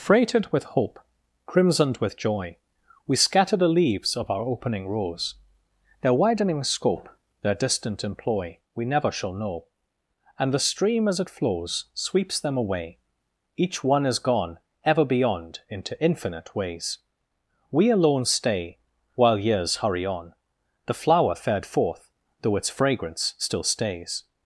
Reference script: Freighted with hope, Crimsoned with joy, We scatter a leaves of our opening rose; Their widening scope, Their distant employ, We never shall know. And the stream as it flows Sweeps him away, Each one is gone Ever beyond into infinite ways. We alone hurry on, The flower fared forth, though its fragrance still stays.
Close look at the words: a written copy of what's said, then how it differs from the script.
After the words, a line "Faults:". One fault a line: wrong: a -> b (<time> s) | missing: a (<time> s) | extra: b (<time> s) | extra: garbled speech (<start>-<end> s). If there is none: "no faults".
Freighted with hope, Crimsoned with joy, We scatter the leaves of our opening rose; Their widening scope, Their distant employ, We never shall know. And the stream as it flows Sweeps them away, Each one is gone Ever beyond into infinite ways. We alone stay While years hurry on, The flower fared forth, though its fragrance still stays.
Faults:
wrong: a -> the (3.5 s)
wrong: him -> them (12.4 s)
extra: stay While years (18.2 s)